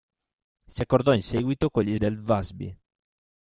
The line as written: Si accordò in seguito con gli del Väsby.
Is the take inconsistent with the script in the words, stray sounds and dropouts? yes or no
no